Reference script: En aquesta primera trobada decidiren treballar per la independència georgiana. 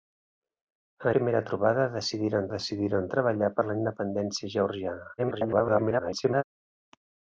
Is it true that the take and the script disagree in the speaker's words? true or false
true